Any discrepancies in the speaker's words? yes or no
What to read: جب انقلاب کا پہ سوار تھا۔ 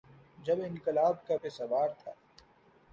no